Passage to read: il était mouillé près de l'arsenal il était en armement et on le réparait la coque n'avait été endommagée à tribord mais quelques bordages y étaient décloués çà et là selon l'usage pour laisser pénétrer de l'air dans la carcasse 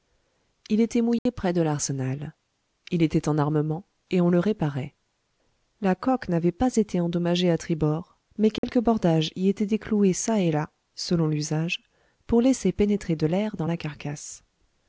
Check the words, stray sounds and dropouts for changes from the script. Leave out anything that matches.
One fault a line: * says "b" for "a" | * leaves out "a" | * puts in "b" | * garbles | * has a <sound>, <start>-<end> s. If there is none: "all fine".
* has a dropout, 1.2-1.3 s
* puts in "pas"
* has a dropout, 8.6-8.6 s